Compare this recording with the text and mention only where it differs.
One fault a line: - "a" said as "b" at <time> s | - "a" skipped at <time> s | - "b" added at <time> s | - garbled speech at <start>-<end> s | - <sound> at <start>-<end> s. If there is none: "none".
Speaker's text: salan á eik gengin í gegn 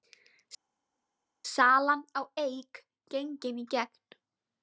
none